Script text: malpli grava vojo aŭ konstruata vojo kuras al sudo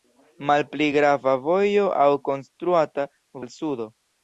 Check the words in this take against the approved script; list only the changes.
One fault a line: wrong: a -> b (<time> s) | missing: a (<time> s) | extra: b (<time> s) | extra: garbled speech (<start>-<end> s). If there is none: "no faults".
missing: vojo kuras (3.1 s)